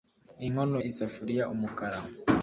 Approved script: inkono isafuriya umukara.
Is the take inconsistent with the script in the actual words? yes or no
no